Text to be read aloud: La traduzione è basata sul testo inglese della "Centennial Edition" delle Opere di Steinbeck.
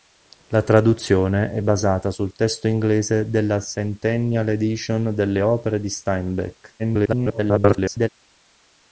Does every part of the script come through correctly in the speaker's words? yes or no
no